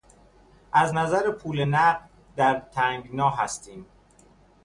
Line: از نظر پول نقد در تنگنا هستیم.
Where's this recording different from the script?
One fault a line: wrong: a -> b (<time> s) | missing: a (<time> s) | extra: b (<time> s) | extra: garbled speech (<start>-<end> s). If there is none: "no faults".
no faults